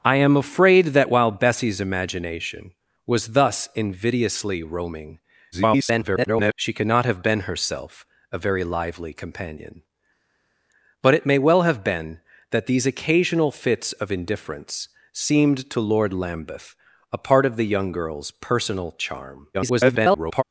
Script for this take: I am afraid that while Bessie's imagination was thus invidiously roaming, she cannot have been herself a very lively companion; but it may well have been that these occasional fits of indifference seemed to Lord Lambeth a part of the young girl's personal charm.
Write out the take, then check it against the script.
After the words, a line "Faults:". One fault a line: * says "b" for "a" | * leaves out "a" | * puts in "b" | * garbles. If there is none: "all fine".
I am afraid that while Bessie's imagination was thus invidiously roaming, [garbled] she cannot have been herself a very lively companion; but it may well have been that these occasional fits of indifference seemed to Lord Lambeth a part of the young girl's personal charm. [garbled]
Faults:
* garbles
* garbles